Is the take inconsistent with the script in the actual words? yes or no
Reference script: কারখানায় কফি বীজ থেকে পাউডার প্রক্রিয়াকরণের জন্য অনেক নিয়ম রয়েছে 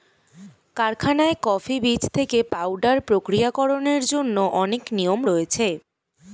no